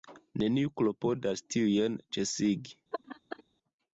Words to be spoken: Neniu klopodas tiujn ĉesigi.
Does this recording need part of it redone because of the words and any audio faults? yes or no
yes